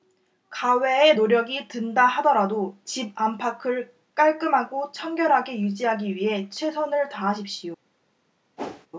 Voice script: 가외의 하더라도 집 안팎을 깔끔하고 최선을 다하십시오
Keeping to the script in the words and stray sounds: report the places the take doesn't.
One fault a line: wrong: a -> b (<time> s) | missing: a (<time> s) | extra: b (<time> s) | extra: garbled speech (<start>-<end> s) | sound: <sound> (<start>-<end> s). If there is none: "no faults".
extra: 노력이 든다 (1.1 s)
extra: 청결하게 유지하기 위해 (4.9 s)
sound: whoosh (8.6-8.9 s)